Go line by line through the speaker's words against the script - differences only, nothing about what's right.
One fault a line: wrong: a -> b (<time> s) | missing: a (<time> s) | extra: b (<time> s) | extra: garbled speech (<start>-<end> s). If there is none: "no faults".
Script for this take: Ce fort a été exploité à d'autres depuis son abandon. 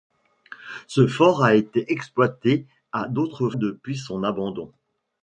no faults